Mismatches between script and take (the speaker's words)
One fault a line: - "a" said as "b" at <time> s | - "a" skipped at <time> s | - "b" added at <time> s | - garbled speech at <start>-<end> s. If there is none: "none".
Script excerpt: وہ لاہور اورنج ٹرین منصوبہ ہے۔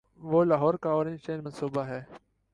- "کا" added at 0.7 s